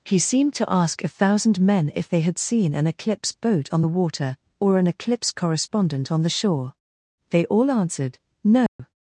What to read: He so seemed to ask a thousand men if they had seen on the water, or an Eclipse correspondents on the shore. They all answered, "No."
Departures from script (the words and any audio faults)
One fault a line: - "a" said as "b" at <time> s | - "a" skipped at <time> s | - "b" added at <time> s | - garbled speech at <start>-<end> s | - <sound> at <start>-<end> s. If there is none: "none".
- "so" skipped at 0.2 s
- "an Eclipse boat" added at 2.7 s
- "correspondents" said as "correspondent" at 5.3 s
- dropout at 8.7-8.8 s